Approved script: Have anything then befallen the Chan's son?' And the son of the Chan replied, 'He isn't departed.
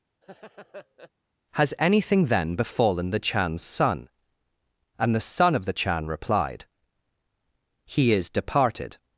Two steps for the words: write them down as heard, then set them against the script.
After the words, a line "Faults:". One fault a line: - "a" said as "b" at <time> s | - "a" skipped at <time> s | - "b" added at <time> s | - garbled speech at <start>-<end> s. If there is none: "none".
Has anything then befallen the Chan's son?' And the son of the Chan replied, 'He is departed.
Faults:
- "Have" said as "Has" at 1.5 s
- "isn't" said as "is" at 8.1 s